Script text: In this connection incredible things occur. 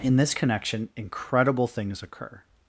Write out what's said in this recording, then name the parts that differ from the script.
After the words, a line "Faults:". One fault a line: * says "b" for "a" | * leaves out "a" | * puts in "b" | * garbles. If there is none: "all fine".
In this connection incredible things occur.
Faults:
all fine